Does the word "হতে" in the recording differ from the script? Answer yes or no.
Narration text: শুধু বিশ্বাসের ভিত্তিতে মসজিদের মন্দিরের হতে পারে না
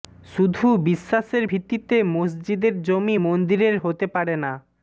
no